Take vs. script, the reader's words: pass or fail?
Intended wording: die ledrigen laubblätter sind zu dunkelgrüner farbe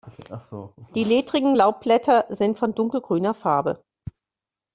fail